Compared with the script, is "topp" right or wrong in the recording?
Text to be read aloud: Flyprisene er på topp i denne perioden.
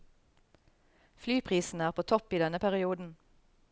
right